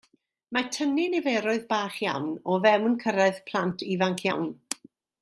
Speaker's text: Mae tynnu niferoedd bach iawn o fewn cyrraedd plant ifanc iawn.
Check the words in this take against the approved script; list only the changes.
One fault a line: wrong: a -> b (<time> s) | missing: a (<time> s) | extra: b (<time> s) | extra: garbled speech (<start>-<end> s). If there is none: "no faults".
no faults